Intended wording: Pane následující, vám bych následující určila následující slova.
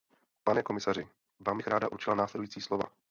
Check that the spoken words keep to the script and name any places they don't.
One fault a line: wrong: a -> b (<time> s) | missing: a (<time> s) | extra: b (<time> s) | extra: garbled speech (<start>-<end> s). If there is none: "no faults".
wrong: následující -> komisaři (0.6 s)
wrong: následující -> ráda (1.7 s)